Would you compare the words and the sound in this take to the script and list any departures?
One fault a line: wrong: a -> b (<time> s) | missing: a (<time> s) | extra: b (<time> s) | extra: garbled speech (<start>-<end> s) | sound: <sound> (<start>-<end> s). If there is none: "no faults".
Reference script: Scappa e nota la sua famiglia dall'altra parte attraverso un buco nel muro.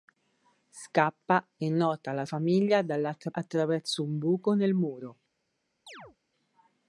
missing: sua (2.2 s)
missing: parte (3.3 s)
sound: chirp (5.9-6.2 s)